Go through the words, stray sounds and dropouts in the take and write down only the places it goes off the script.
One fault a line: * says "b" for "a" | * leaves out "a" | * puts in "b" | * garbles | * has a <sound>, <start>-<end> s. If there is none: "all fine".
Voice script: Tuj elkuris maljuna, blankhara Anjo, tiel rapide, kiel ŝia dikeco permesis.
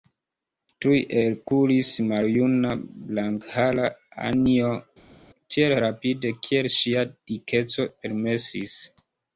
all fine